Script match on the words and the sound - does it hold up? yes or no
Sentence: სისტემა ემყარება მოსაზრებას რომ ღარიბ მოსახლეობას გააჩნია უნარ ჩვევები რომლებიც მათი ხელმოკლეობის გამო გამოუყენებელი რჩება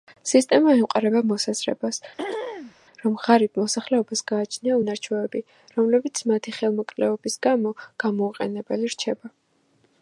no